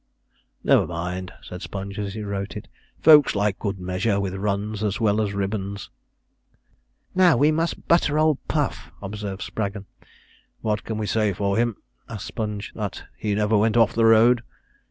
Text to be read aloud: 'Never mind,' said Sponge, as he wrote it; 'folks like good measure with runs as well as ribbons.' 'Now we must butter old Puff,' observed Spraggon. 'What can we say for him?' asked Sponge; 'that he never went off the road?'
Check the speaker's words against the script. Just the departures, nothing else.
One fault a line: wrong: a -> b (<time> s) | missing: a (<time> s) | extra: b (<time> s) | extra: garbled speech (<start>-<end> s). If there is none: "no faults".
no faults